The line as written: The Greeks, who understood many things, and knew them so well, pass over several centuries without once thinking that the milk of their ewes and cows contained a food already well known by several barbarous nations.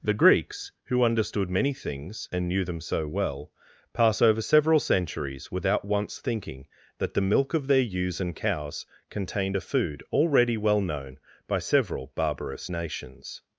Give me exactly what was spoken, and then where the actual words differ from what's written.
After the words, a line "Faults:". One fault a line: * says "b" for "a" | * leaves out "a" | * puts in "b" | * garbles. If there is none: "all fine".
The Greeks, who understood many things, and knew them so well, pass over several centuries without once thinking that the milk of their ewes and cows contained a food already well known by several barbarous nations.
Faults:
all fine